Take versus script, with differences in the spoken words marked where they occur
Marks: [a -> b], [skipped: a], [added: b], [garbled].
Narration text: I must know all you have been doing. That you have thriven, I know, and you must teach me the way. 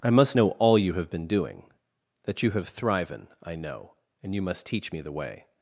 I must know all you have been doing. That you have thriven, I know, and you must teach me the way.